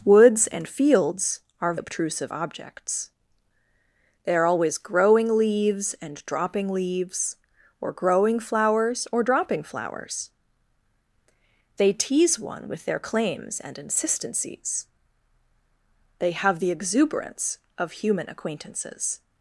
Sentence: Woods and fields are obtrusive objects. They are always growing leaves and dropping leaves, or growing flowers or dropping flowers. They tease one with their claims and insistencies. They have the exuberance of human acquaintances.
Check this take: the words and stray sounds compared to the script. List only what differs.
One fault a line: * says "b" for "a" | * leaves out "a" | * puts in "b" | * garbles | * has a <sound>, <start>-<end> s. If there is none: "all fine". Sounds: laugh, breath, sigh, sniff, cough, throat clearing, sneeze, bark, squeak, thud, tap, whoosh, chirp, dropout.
all fine